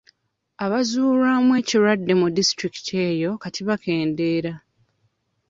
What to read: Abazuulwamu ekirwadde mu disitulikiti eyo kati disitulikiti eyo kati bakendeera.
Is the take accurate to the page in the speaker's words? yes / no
no